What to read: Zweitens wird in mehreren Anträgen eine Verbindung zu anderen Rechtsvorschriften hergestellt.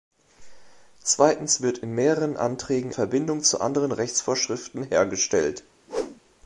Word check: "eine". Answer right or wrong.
wrong